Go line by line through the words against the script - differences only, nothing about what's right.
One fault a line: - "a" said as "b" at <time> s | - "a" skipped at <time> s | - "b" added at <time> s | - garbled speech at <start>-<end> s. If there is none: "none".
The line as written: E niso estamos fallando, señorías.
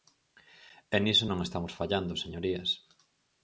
- "non" added at 1.3 s